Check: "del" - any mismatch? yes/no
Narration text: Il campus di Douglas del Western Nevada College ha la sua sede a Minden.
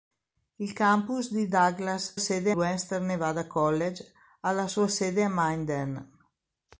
yes